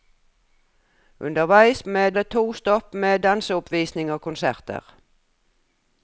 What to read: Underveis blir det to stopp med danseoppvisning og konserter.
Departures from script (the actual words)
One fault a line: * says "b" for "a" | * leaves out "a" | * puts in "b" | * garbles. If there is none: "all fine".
* says "med" for "blir"